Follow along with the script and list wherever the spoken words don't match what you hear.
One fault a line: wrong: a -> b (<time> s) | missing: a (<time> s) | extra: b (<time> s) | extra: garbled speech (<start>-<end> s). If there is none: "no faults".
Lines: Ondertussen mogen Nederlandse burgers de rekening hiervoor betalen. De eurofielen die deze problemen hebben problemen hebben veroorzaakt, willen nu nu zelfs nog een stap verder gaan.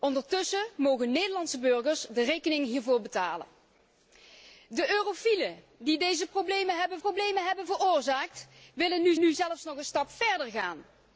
no faults